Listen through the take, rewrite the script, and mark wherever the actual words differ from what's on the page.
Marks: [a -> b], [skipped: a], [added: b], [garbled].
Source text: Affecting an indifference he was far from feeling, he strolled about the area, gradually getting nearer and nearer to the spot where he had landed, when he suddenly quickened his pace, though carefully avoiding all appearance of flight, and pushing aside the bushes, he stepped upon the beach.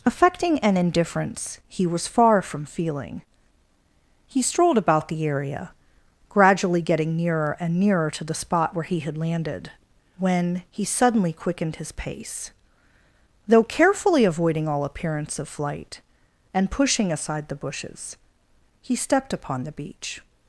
Affecting an indifference he was far from feeling, he strolled about the area, gradually getting nearer and nearer to the spot where he had landed, when he suddenly quickened his pace, though carefully avoiding all appearance of flight, and pushing aside the bushes, he stepped upon the beach.